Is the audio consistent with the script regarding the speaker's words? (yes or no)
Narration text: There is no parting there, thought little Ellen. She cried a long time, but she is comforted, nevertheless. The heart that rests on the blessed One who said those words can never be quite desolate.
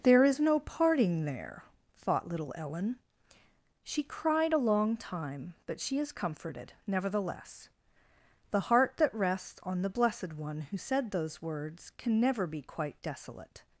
yes